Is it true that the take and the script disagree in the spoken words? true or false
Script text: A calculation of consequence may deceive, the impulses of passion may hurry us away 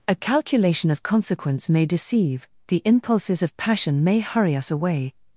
false